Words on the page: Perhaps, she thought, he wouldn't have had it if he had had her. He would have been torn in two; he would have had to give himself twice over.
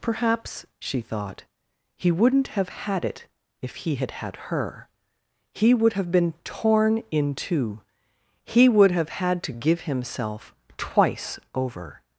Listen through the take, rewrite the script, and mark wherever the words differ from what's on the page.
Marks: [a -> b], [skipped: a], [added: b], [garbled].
Perhaps, she thought, he wouldn't have had it if he had had her. He would have been torn in two; he would have had to give himself twice over.